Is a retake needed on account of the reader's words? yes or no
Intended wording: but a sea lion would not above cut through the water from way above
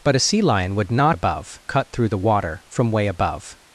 no